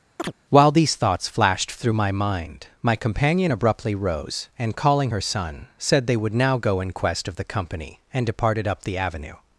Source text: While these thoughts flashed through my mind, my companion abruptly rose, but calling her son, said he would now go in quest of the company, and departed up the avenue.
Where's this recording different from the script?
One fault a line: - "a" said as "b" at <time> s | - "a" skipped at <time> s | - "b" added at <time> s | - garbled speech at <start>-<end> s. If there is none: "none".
- "but" said as "and" at 4.6 s
- "he" said as "they" at 6.1 s